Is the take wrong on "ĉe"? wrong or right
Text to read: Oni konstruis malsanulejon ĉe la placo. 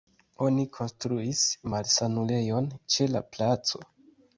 right